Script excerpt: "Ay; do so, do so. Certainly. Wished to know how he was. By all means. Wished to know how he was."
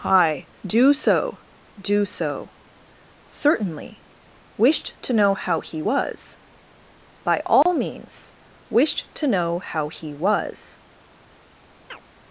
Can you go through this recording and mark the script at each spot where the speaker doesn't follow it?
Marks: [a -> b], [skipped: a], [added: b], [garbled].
["Ay; -> Hi] do so, do so. Certainly. Wished to know how he was. By all means. Wished to know how he was."